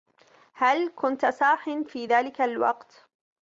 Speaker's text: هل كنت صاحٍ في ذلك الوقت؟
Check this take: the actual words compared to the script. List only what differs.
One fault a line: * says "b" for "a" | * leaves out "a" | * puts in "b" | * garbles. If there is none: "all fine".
all fine